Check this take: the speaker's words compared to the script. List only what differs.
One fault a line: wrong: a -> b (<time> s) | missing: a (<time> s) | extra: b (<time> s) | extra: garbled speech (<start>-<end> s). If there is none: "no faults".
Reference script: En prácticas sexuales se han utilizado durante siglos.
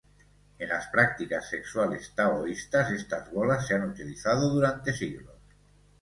extra: las (0.7 s)
extra: taoístas estas bolas (2.1 s)